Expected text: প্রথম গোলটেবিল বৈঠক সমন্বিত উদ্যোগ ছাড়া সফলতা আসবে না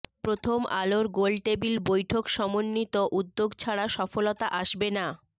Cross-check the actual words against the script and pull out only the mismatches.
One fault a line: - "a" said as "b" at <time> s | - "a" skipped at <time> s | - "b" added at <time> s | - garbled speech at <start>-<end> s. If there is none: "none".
- "আলোর" added at 0.8 s